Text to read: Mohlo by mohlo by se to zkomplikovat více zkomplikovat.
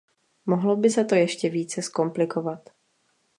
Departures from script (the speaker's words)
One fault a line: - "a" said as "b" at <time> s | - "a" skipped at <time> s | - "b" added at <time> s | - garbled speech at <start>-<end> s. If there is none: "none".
- "mohlo by" skipped at 0.9 s
- "zkomplikovat" said as "ještě" at 1.1 s